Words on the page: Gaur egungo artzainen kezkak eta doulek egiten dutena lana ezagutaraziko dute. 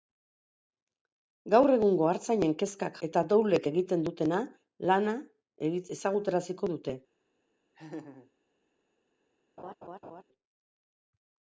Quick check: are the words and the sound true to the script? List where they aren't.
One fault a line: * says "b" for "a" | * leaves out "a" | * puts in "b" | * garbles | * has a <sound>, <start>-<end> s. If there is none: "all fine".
* has a laugh, 7.7-8.3 s
* has a laugh, 9.6-10.2 s